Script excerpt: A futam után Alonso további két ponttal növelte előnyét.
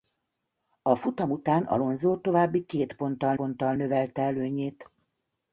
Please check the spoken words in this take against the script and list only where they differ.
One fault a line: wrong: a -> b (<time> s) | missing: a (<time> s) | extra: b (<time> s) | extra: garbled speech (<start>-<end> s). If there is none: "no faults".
extra: ponttal (3.3 s)